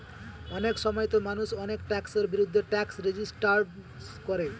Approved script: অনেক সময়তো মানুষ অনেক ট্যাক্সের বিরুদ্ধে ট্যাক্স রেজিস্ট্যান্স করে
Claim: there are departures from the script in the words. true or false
false